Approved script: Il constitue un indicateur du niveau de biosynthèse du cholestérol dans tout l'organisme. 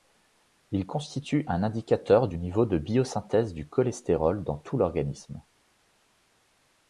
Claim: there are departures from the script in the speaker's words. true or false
false